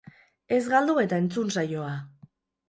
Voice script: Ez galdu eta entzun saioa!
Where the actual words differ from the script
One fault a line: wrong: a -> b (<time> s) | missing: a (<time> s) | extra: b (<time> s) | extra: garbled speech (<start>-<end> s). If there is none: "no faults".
no faults